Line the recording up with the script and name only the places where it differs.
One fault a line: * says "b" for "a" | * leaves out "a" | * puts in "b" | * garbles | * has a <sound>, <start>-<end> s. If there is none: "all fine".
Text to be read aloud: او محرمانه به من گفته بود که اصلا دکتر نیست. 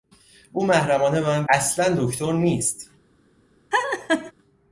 * leaves out "گفته بود که"
* has a laugh, 3.7-4.3 s